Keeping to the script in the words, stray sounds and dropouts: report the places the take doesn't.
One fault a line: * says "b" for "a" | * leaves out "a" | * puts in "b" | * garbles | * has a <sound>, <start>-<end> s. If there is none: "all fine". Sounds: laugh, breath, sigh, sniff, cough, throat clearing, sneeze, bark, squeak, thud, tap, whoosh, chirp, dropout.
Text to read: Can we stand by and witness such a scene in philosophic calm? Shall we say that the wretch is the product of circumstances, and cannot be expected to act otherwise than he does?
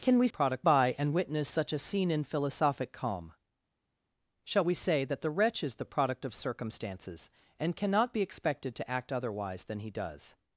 * says "product" for "stand"